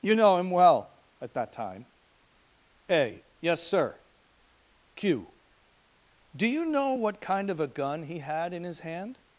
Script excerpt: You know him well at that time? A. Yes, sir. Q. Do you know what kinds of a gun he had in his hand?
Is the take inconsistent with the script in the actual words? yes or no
yes